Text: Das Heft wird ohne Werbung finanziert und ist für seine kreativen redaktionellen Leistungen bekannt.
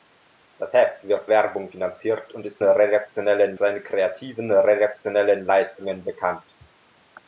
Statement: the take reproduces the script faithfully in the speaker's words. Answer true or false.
false